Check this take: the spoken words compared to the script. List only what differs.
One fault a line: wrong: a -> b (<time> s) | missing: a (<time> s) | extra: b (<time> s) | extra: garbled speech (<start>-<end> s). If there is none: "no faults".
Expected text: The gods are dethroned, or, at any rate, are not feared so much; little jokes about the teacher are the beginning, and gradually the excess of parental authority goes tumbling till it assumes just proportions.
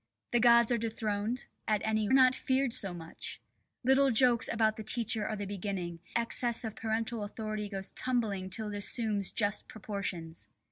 missing: or (1.5 s)
missing: rate are (2.1 s)
missing: and gradually the (6.0 s)